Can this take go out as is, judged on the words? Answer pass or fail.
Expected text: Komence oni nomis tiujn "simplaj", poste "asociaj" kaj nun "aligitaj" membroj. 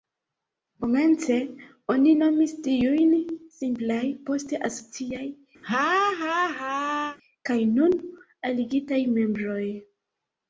pass